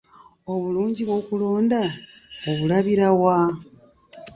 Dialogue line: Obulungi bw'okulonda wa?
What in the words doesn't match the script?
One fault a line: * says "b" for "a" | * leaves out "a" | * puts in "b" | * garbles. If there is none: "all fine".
* puts in "obulabira"